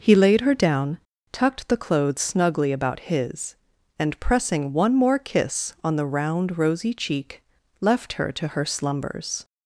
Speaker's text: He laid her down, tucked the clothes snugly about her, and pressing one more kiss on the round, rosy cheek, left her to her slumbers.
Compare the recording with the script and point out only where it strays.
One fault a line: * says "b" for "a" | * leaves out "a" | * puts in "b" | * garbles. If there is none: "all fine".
* says "his" for "her"